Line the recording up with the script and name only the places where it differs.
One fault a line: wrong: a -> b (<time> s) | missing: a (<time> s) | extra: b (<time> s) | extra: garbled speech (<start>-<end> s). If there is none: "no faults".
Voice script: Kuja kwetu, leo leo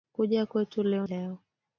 no faults